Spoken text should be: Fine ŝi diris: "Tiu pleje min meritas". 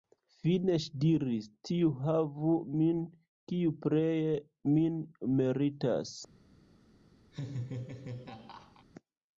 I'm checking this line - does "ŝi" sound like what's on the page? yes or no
yes